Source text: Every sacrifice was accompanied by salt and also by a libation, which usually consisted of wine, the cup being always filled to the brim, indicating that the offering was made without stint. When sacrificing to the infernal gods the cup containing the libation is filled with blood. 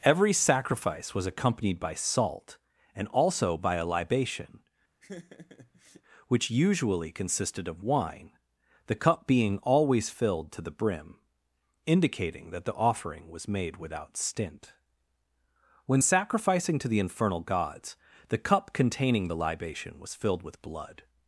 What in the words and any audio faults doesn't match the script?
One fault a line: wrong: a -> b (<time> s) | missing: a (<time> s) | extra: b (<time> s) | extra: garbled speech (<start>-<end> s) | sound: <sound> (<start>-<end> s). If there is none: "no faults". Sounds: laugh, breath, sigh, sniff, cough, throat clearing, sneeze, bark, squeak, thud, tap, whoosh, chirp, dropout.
sound: laugh (5.0-6.0 s)
wrong: is -> was (20.0 s)